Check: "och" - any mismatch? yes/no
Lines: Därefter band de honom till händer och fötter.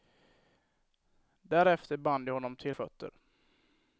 yes